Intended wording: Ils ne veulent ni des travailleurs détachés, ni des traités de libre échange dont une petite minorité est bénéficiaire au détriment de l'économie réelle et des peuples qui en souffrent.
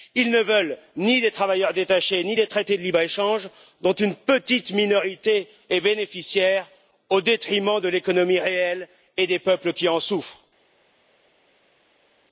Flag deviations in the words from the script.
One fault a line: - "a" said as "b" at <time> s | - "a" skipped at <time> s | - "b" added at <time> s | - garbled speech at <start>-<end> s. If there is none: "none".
none